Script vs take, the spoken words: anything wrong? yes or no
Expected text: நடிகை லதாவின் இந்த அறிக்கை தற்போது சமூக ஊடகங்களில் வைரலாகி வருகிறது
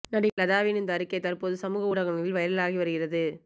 no